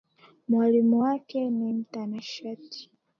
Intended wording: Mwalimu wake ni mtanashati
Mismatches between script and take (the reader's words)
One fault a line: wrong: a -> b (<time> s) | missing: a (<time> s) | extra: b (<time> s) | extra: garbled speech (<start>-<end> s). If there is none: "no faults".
no faults